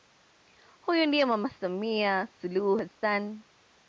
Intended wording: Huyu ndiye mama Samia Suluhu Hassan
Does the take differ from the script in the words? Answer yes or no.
no